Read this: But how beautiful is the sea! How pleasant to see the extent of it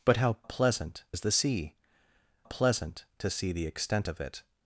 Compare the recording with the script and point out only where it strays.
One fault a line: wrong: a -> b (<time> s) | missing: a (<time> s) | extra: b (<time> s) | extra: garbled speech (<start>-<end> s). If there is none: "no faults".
wrong: beautiful -> pleasant (0.4 s)
missing: How (1.7 s)